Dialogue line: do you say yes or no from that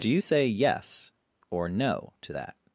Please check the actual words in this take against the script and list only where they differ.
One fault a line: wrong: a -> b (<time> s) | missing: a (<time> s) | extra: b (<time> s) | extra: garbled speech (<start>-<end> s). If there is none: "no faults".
wrong: from -> to (2.2 s)